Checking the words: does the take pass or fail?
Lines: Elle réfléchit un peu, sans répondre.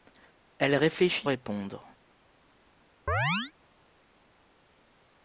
fail